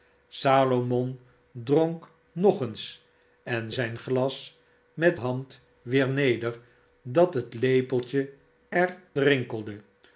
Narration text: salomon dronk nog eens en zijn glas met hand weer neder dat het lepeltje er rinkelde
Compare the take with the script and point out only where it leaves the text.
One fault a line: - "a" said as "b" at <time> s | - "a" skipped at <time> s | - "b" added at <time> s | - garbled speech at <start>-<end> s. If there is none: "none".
none